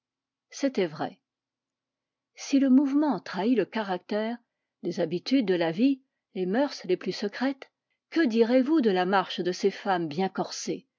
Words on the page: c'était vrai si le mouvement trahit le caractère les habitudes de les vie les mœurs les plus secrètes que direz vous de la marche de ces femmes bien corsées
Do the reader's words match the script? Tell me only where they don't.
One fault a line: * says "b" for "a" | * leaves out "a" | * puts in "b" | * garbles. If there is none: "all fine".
* says "la" for "les"